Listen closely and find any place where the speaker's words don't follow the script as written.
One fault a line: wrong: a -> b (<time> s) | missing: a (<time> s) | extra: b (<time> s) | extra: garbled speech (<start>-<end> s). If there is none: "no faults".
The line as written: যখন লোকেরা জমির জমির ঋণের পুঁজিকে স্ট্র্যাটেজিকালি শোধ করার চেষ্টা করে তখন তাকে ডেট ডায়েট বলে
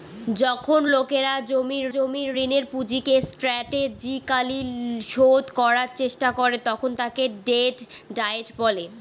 no faults